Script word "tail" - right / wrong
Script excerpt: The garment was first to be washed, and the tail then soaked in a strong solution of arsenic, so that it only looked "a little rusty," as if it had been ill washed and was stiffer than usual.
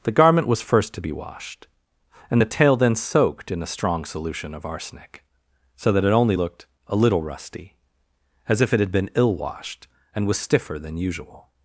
right